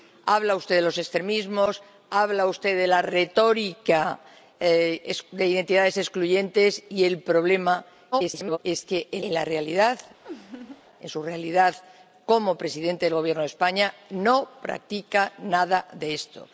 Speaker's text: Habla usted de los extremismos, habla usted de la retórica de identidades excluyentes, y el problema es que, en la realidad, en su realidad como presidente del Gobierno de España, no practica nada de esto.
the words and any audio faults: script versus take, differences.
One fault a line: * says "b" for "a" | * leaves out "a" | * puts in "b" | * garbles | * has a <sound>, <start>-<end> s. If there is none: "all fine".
* garbles
* puts in "en"
* has a laugh, 10.2-10.8 s